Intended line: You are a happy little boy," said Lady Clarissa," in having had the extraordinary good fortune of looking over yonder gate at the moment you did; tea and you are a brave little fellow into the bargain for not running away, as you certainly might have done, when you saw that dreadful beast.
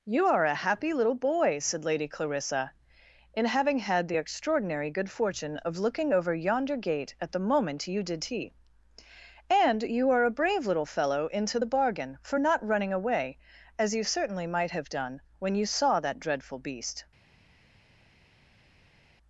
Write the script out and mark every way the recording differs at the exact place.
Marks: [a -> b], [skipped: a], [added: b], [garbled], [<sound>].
You are a happy little boy," said Lady Clarissa," in having had the extraordinary good fortune of looking over yonder gate at the moment you did; tea and you are a brave little fellow into the bargain for not running away, as you certainly might have done, when you saw that dreadful beast.